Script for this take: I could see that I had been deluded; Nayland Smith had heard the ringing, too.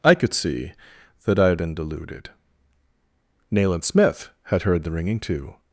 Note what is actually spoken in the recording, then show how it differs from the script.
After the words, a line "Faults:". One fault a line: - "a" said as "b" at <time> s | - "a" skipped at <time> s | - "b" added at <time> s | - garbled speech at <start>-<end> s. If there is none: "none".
I could see that I had been deluded; Nayland Smith had heard the ringing, too.
Faults:
none